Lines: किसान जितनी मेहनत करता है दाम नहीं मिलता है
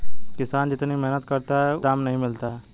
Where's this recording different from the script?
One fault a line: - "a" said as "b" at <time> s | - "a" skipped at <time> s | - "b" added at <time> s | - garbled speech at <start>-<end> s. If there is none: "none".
none